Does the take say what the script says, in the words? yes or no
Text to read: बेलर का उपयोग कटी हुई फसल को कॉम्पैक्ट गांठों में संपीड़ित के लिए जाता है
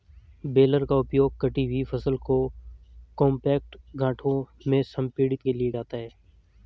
yes